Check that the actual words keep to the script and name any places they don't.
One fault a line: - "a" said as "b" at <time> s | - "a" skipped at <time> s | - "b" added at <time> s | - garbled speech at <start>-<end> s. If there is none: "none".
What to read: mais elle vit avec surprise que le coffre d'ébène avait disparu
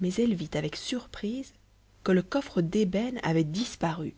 none